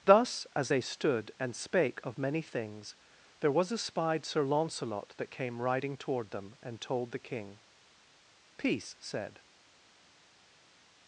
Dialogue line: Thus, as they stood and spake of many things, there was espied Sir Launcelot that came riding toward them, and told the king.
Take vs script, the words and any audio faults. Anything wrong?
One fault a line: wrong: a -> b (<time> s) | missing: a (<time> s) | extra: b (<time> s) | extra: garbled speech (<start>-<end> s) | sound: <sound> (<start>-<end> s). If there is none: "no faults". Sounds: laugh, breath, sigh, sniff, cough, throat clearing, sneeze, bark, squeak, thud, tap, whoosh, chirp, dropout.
extra: Peace said (8.6 s)